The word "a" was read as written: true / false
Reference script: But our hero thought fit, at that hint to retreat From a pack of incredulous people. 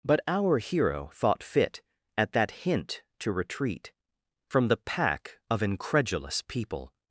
false